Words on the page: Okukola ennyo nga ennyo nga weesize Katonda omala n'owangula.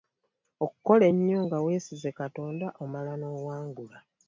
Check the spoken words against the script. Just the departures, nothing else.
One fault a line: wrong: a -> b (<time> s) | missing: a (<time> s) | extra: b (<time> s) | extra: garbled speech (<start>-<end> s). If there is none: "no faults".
missing: ennyo nga (1.6 s)